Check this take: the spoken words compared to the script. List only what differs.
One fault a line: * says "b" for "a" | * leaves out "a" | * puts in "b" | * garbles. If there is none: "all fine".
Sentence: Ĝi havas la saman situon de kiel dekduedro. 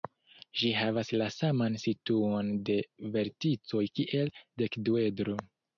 * puts in "verticoj"